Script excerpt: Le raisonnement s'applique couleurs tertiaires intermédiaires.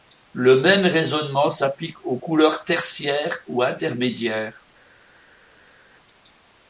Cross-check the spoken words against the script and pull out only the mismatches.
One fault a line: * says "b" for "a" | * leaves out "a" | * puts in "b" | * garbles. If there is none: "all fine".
* puts in "même"
* puts in "aux"
* puts in "ou"